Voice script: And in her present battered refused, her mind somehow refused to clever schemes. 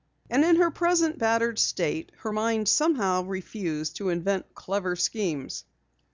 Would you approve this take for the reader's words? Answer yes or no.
no